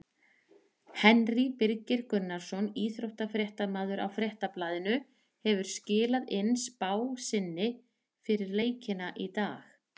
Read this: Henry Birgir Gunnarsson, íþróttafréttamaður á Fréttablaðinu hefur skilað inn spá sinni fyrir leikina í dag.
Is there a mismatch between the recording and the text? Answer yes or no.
no